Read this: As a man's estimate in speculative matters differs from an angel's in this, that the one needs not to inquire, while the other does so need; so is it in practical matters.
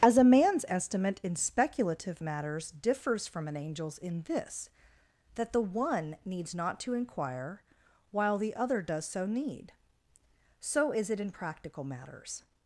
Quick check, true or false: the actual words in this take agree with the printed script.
true